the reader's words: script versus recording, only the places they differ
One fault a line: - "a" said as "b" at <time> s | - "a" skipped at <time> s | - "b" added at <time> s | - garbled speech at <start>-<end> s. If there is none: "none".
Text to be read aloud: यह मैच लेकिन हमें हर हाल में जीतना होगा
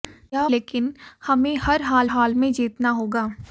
- "मैच" skipped at 0.5 s
- "हाल" added at 2.1 s